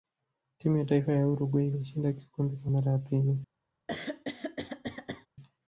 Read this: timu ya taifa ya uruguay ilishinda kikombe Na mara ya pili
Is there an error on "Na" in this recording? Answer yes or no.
yes